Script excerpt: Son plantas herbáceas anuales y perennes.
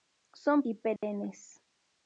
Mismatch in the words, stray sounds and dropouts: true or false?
true